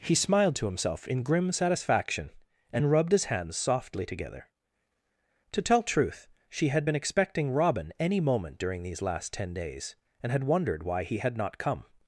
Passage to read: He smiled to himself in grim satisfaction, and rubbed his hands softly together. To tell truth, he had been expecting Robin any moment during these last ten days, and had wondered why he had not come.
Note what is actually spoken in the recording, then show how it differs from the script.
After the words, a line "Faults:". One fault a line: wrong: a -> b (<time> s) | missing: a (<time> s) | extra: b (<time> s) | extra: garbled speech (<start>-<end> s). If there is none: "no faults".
He smiled to himself in grim satisfaction, and rubbed his hands softly together. To tell truth, she had been expecting Robin any moment during these last ten days, and had wondered why he had not come.
Faults:
wrong: he -> she (6.5 s)